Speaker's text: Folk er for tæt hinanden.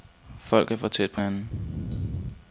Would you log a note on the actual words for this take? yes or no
yes